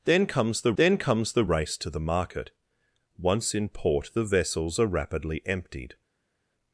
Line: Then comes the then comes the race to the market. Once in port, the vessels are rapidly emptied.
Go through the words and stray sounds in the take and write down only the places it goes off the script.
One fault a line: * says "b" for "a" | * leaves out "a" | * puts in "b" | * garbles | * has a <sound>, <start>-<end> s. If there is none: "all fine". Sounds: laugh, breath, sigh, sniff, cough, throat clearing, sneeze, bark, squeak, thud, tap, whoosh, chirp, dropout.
all fine